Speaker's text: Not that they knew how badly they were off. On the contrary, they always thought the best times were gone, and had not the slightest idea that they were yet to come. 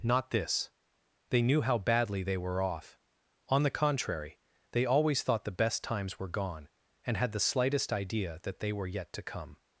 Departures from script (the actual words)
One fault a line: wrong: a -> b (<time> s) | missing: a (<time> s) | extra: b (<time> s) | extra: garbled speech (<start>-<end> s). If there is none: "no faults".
wrong: that -> this (0.3 s)
missing: not (7.3 s)